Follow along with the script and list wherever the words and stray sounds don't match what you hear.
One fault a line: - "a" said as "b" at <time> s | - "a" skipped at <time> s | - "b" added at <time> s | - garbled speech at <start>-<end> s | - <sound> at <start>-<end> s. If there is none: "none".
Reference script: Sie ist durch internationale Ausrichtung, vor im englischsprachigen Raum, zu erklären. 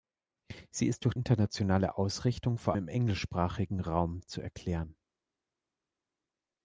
none